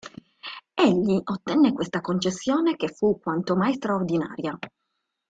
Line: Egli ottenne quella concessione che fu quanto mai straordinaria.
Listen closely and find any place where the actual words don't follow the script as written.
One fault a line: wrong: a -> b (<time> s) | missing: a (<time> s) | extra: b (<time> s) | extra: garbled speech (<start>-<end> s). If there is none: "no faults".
wrong: quella -> questa (1.7 s)